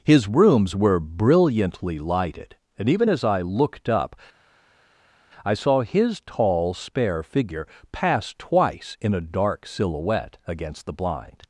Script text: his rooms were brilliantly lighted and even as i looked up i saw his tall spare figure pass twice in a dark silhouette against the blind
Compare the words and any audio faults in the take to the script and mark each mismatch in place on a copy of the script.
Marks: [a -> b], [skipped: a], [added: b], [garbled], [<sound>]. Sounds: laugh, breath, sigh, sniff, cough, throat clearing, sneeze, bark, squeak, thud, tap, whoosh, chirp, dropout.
his rooms were brilliantly lighted and even as i looked up i saw his tall spare figure pass twice in a dark silhouette against the blind